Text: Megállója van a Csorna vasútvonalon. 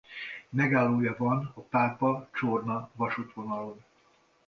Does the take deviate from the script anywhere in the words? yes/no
yes